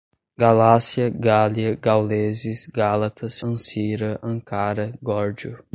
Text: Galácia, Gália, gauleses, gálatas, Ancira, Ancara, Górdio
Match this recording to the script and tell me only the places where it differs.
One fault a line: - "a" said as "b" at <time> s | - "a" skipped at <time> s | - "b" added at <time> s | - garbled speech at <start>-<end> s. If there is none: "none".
none